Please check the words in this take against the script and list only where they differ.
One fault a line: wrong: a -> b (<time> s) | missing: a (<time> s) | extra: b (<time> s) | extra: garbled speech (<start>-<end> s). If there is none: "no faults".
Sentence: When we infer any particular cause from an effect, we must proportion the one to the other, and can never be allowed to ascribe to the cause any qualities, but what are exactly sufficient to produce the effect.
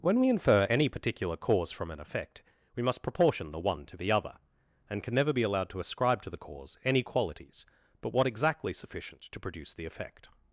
missing: are (8.2 s)